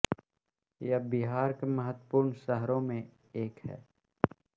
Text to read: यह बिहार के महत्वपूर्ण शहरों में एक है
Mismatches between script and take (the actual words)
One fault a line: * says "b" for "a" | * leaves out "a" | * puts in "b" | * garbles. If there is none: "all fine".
all fine